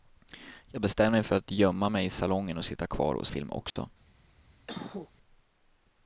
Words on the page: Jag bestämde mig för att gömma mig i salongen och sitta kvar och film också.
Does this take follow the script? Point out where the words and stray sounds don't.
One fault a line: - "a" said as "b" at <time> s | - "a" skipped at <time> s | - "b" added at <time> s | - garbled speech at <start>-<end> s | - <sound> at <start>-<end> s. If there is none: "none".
- dropout at 3.7-3.8 s
- cough at 4.7-5.1 s